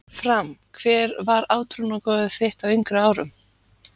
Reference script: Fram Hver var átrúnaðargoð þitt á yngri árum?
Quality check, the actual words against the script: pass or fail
pass